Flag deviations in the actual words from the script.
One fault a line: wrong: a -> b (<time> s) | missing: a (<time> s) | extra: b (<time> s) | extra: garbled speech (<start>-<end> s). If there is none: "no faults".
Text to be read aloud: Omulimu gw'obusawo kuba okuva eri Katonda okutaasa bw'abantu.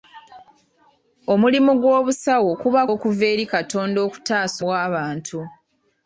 no faults